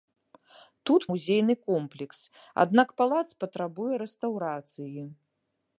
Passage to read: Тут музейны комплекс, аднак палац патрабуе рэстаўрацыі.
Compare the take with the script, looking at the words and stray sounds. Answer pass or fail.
pass